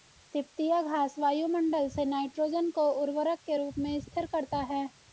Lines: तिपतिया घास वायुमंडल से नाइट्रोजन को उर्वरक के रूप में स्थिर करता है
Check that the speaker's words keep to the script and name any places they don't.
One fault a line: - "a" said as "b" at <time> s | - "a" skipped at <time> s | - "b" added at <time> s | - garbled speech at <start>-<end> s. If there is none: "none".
none